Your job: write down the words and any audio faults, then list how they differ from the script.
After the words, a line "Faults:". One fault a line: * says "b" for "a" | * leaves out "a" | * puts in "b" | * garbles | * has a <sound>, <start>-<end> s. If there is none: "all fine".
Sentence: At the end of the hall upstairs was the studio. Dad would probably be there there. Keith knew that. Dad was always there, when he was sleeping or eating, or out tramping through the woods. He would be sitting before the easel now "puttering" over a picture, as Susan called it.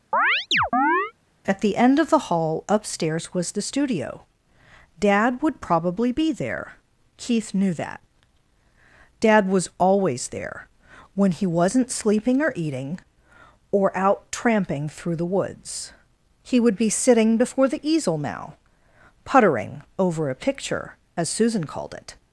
At the end of the hall upstairs was the studio. Dad would probably be there. Keith knew that. Dad was always there, when he wasn't sleeping or eating, or out tramping through the woods. He would be sitting before the easel now "puttering" over a picture, as Susan called it.
Faults:
* has a chirp, 0.1-1.1 s
* leaves out "there"
* says "wasn't" for "was"